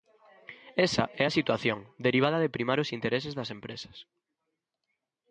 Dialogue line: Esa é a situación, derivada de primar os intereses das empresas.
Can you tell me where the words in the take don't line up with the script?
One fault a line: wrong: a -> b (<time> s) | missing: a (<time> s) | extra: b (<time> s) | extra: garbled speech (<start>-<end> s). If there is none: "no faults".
no faults